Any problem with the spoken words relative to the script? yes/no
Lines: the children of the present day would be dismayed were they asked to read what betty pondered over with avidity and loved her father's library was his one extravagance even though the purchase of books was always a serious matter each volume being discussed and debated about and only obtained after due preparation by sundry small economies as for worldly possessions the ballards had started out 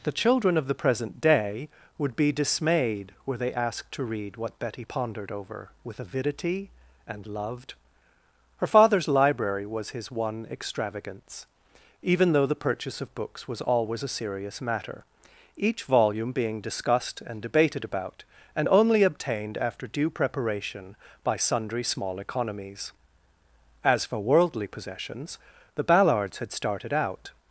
no